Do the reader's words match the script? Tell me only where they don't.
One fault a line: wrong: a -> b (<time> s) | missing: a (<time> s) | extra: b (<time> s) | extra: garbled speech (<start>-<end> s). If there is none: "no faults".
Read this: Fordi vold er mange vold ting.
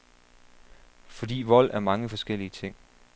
wrong: vold -> forskellige (2.1 s)